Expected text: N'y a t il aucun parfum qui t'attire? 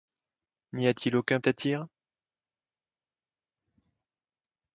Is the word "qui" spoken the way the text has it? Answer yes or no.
no